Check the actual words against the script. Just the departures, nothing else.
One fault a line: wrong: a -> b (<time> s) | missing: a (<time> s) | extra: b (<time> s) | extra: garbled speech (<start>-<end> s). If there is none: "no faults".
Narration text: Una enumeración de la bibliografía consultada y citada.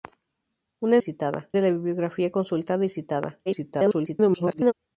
wrong: enumeración -> citada (1.0 s)
extra: garbled speech (3.5-4.7 s)